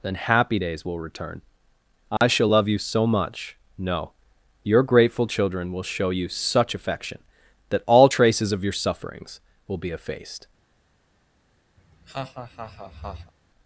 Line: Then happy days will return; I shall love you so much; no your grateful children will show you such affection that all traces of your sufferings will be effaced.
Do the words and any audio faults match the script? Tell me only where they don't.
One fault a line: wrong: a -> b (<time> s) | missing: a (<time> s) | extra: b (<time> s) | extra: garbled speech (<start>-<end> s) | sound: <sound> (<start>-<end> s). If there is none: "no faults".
sound: dropout (2.2-2.2 s)
sound: laugh (11.8-13.3 s)